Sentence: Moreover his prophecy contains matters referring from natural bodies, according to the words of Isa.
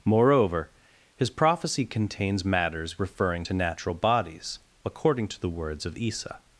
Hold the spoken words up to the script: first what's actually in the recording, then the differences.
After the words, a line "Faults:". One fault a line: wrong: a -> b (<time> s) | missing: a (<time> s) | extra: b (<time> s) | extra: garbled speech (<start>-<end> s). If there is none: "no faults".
Moreover his prophecy contains matters referring to natural bodies, according to the words of Isa.
Faults:
wrong: from -> to (3.4 s)